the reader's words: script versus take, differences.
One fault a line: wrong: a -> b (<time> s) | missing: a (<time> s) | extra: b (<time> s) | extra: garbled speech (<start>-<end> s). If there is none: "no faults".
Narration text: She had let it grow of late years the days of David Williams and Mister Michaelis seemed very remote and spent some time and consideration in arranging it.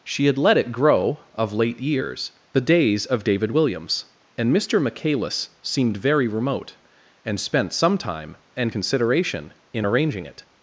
no faults